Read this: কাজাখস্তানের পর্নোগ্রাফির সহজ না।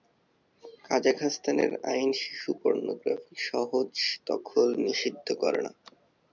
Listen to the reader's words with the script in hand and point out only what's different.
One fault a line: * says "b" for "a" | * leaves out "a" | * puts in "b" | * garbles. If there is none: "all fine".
* puts in "আইন শিশু"
* puts in "দখল নিষিদ্ধ করে"